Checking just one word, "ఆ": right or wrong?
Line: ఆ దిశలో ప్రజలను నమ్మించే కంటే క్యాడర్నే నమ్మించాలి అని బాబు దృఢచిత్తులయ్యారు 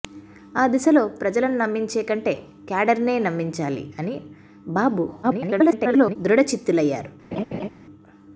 right